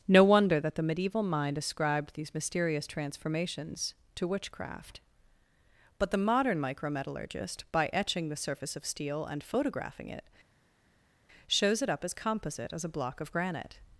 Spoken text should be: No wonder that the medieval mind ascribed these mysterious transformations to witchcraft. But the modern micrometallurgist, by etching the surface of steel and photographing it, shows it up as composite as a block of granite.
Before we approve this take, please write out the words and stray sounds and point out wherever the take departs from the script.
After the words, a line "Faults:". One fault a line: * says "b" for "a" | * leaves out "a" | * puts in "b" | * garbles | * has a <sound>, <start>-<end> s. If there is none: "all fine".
No wonder that the medieval mind ascribed these mysterious transformations to witchcraft. But the modern micrometallurgist, by etching the surface of steel and photographing it, shows it up as composite as a block of granite.
Faults:
all fine